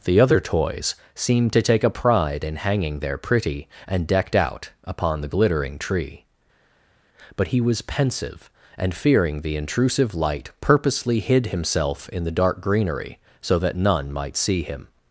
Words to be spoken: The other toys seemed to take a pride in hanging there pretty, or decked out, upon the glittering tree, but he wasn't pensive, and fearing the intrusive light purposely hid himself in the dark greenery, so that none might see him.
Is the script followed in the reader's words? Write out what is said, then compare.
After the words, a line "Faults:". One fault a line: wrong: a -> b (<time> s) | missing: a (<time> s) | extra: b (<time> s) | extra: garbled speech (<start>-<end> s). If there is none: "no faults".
The other toys seemed to take a pride in hanging there pretty, and decked out, upon the glittering tree, but he was pensive, and fearing the intrusive light purposely hid himself in the dark greenery, so that none might see him.
Faults:
wrong: or -> and (3.9 s)
wrong: wasn't -> was (7.6 s)